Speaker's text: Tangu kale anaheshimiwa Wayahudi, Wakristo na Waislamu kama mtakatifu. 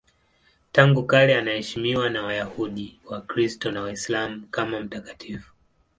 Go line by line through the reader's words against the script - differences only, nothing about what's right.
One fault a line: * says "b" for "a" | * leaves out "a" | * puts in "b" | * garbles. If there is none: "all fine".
* puts in "na"